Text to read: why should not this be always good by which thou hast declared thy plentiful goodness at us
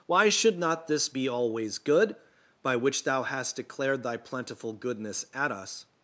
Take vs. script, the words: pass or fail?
pass